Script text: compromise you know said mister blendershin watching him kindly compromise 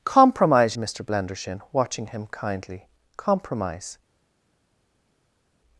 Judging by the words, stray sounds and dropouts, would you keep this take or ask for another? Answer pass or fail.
fail